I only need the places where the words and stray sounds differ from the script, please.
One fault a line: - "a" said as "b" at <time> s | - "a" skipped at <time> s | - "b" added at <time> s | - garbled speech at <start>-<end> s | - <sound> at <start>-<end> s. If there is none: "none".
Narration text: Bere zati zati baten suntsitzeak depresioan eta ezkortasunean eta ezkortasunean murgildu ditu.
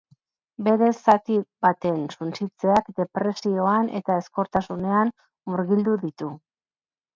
- "zati" skipped at 1.4 s
- "eta ezkortasunean" skipped at 5.2 s